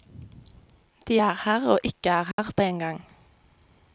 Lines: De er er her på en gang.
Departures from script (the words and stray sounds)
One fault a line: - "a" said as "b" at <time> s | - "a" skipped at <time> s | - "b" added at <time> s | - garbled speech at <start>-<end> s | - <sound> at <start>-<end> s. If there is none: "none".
- "her og ikke" added at 1.4 s
- dropout at 2.3-2.4 s